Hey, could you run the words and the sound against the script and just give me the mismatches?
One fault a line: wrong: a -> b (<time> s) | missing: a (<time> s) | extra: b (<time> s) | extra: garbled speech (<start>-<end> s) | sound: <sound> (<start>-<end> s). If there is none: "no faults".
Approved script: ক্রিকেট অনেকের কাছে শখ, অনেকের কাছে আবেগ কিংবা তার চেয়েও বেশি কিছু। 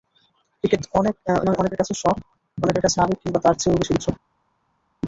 no faults